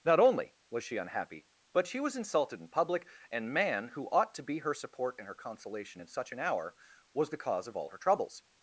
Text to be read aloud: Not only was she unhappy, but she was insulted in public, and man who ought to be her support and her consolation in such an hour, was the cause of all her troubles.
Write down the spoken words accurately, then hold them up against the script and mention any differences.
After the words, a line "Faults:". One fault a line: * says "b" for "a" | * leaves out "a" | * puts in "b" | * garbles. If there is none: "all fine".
Not only was she unhappy, but she was insulted in public, and man who ought to be her support and her consolation in such an hour, was the cause of all her troubles.
Faults:
all fine